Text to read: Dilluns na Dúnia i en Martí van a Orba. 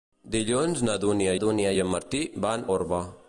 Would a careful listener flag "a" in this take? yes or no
yes